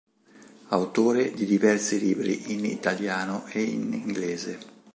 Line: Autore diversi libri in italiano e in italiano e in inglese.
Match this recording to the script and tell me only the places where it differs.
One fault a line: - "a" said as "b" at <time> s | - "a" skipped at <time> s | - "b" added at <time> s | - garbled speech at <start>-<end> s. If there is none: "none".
- "di" added at 1.3 s
- "italiano e in" skipped at 3.9 s